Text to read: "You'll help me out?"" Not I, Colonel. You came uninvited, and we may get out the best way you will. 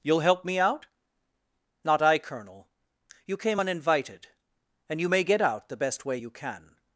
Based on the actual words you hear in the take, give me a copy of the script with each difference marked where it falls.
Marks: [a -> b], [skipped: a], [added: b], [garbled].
"You'll help me out?"" Not I, Colonel. You came uninvited, and [we -> you] may get out the best way you [will. -> can]